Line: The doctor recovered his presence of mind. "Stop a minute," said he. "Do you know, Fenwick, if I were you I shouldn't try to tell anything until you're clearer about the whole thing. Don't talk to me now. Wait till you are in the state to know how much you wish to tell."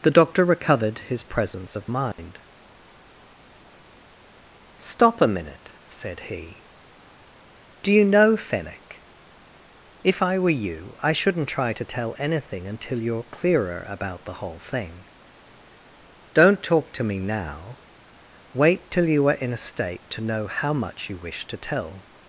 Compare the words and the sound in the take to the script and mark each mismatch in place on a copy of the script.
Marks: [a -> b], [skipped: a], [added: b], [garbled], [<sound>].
The doctor recovered his presence of mind. [dropout] "Stop a minute," said he. "Do you know, Fenwick, if I were you I shouldn't try to tell anything until you're clearer about the whole thing. Don't talk to me now. Wait till you are in [the -> a] state to know how much you wish to tell."